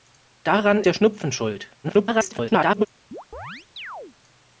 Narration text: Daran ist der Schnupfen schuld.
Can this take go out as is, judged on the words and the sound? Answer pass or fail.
fail